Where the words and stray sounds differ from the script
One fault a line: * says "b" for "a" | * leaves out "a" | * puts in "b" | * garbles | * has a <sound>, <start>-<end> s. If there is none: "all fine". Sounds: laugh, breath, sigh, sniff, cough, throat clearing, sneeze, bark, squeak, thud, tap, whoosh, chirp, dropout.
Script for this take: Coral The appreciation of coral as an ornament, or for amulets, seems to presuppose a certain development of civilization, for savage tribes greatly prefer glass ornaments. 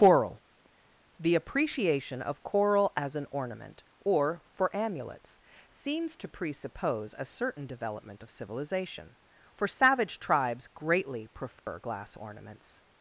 * has a dropout, 11.6-11.7 s